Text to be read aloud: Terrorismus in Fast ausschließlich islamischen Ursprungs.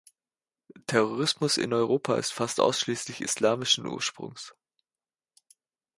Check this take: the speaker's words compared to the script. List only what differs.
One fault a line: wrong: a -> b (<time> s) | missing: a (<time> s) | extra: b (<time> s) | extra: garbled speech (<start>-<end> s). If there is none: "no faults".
extra: Europa ist (1.7 s)